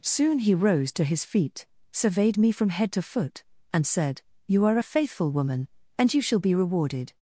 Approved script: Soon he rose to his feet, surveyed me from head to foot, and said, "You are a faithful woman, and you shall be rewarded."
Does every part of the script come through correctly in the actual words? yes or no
yes